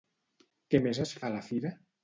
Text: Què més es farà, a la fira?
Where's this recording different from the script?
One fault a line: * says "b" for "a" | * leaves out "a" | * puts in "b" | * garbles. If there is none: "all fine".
* leaves out "farà"